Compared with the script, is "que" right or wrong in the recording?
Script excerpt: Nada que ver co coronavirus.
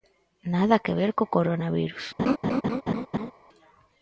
right